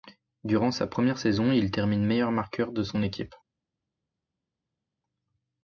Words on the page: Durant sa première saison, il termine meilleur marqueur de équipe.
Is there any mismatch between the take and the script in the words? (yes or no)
yes